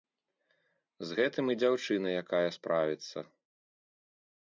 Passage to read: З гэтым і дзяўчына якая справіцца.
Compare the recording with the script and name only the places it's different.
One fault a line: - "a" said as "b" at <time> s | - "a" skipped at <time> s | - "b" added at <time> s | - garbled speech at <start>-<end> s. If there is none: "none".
none